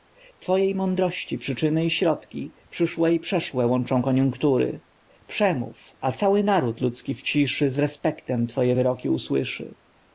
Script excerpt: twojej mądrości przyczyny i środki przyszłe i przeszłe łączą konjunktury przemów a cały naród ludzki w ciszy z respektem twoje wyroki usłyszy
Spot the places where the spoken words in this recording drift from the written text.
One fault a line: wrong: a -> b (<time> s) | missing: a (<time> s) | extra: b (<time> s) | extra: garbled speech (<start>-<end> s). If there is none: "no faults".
no faults